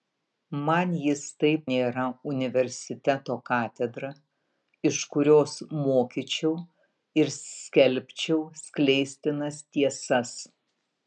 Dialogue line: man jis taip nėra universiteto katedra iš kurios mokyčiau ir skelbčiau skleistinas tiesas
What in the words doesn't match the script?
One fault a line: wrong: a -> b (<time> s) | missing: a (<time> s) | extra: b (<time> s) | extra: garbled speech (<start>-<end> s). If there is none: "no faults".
no faults